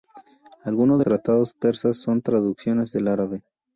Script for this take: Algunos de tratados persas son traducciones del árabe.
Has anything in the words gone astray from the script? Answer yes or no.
no